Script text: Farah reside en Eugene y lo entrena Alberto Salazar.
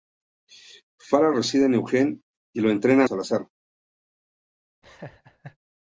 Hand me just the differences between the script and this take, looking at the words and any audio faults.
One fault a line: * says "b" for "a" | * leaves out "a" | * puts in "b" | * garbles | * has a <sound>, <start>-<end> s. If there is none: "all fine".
* leaves out "Alberto"
* has a laugh, 4.8-5.6 s